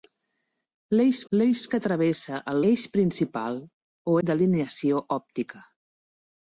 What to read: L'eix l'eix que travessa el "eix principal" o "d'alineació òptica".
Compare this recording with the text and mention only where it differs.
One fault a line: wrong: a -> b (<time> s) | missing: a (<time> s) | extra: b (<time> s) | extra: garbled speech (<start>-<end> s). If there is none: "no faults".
no faults